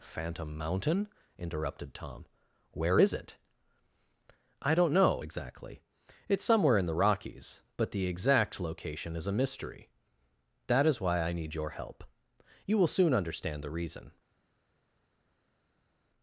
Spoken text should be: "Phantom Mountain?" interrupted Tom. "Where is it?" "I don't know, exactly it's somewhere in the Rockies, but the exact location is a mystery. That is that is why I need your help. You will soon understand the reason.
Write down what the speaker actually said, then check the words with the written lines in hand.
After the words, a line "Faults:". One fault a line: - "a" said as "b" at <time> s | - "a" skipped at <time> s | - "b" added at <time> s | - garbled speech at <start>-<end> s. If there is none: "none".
"Phantom Mountain?" interrupted Tom. "Where is it?" "I don't know, exactly it's somewhere in the Rockies, but the exact location is a mystery. That is why I need your help. You will soon understand the reason.
Faults:
- "that is" skipped at 11.0 s